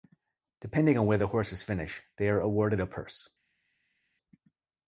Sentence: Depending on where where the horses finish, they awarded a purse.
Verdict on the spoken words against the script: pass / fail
fail